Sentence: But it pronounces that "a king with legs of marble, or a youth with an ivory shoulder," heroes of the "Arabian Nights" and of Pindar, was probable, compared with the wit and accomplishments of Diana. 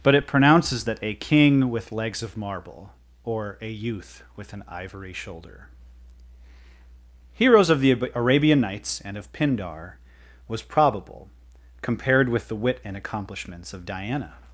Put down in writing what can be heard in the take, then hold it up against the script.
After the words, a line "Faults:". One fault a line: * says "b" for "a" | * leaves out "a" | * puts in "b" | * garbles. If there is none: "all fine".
But it pronounces that "a king with legs of marble, or a youth with an ivory shoulder," heroes of the "Arabian Nights" and of Pindar, was probable, compared with the wit and accomplishments of Diana.
Faults:
all fine